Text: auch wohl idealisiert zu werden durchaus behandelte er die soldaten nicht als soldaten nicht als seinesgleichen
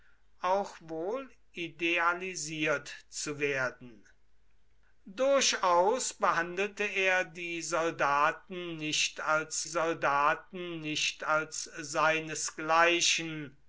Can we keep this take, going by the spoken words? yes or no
yes